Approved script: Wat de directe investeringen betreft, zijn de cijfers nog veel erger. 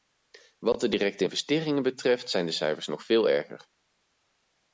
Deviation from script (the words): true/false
false